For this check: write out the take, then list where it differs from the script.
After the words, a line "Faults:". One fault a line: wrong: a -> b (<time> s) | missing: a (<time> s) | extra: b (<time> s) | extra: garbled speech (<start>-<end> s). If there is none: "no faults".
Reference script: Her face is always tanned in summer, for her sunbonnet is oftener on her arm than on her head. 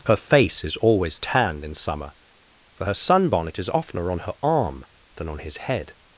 Her face is always tanned in summer, for her sunbonnet is oftener on her arm than on his head.
Faults:
wrong: her -> his (5.4 s)